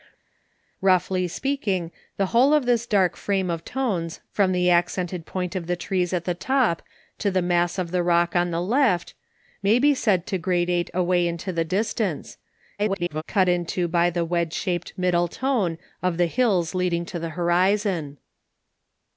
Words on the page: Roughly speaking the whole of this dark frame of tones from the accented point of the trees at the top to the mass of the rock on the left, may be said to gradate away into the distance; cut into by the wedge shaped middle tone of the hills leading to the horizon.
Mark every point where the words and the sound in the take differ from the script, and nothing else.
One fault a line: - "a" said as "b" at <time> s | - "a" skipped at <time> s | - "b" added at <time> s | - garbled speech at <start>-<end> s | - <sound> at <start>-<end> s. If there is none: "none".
- garbled speech at 12.8-13.2 s